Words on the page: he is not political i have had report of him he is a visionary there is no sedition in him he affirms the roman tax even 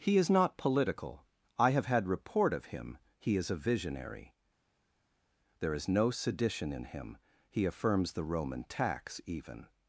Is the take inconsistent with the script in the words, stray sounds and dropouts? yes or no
no